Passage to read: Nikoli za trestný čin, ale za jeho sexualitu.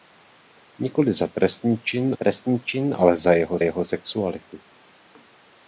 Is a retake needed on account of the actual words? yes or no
yes